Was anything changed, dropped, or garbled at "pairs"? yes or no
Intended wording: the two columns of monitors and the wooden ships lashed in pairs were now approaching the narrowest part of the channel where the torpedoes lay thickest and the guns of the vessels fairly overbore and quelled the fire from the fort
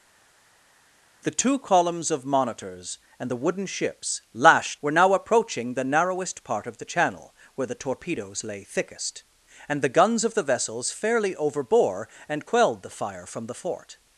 yes